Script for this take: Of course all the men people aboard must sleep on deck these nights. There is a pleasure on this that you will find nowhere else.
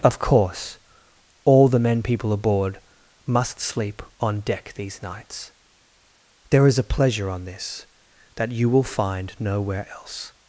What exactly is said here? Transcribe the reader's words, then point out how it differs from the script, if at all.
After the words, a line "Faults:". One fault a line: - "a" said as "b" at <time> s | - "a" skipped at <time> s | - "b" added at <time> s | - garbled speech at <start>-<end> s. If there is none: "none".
Of course all the men people aboard must sleep on deck these nights. There is a pleasure on this that you will find nowhere else.
Faults:
none